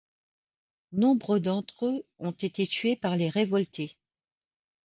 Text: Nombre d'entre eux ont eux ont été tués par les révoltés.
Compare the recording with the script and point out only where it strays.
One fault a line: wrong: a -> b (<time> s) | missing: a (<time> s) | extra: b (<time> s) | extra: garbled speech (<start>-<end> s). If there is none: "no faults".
missing: eux ont (2.3 s)